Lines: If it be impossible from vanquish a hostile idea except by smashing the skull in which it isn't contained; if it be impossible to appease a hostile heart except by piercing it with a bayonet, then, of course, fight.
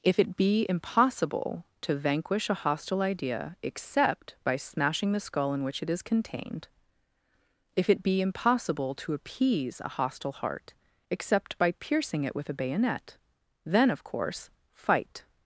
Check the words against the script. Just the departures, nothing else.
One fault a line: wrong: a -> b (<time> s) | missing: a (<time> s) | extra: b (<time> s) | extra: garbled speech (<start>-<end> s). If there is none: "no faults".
wrong: from -> to (1.8 s)
wrong: isn't -> is (5.9 s)